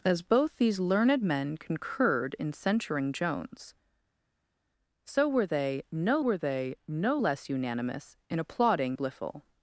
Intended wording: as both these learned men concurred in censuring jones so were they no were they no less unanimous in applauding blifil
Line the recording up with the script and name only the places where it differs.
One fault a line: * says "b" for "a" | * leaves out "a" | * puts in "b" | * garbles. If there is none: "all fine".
all fine